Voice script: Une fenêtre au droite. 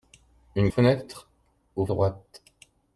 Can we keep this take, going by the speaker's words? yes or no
yes